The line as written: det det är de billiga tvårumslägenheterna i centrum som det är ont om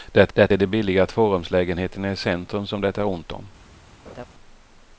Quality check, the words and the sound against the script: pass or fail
fail